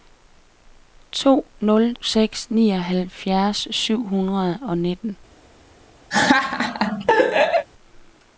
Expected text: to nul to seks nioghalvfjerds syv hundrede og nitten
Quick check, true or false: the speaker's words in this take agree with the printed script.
false